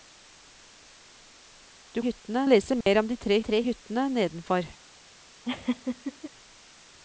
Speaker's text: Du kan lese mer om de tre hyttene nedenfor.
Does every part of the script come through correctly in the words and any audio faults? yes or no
no